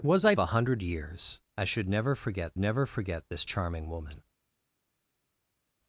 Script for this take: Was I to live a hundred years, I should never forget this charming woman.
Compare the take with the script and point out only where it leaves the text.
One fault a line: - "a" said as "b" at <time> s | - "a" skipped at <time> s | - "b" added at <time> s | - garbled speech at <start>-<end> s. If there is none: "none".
- "to live" skipped at 0.3 s
- "never forget" added at 2.6 s